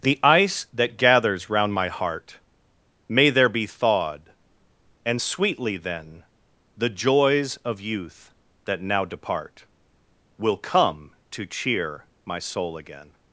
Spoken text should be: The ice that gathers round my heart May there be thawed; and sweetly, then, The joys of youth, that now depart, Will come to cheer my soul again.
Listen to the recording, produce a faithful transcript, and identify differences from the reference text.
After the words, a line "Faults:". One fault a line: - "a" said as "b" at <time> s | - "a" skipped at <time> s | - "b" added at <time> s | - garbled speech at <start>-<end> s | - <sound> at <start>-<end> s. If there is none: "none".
The ice that gathers round my heart May there be thawed; and sweetly, then, The joys of youth, that now depart, Will come to cheer my soul again.
Faults:
none